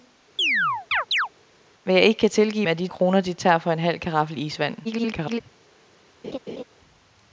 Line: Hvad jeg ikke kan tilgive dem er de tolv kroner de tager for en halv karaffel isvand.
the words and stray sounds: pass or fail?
fail